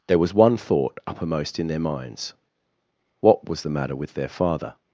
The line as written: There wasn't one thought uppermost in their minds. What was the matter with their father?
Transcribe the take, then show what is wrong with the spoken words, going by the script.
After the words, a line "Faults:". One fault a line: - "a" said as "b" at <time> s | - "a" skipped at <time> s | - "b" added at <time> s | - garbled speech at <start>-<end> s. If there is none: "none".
There was one thought uppermost in their minds. What was the matter with their father?
Faults:
- "wasn't" said as "was" at 0.2 s